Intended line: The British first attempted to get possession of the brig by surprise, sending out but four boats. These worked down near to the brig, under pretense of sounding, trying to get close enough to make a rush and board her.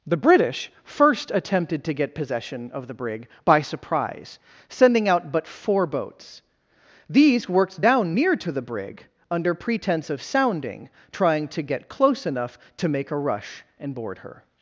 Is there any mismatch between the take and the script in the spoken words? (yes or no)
no